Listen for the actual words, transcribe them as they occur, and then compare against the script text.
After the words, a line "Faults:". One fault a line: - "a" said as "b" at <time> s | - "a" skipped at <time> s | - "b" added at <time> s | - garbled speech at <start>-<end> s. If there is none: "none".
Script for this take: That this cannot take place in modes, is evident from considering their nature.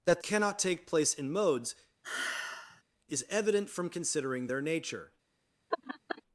That cannot take place in modes, is evident from considering their nature.
Faults:
- "this" skipped at 0.2 s